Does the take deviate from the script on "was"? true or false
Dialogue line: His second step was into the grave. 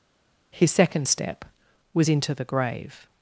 false